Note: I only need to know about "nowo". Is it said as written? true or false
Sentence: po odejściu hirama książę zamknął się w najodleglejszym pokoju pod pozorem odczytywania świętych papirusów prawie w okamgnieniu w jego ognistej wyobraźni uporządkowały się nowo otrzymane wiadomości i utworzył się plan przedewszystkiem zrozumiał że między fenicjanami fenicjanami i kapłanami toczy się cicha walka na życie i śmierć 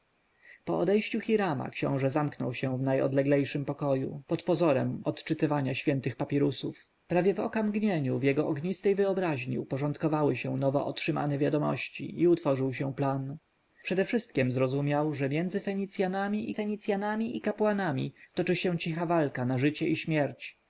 true